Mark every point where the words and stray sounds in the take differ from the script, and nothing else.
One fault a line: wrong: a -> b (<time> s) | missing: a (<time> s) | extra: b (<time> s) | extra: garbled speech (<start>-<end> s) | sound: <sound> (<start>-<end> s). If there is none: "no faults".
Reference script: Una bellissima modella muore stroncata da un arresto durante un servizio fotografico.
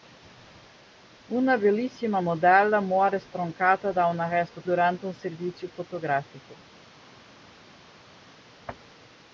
no faults